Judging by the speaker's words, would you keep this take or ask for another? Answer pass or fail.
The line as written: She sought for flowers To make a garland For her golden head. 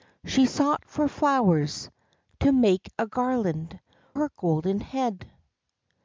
fail